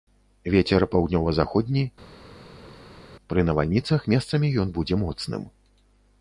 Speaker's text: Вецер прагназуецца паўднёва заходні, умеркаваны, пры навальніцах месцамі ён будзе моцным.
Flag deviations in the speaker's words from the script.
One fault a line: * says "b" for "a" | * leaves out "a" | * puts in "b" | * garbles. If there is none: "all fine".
* leaves out "прагназуецца"
* leaves out "умеркаваны"